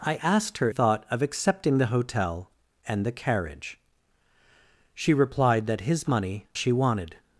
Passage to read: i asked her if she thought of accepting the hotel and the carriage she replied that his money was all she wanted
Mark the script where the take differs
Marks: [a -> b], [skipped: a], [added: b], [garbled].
i asked her [skipped: if she] thought of accepting the hotel and the carriage she replied that his money [skipped: was all] she wanted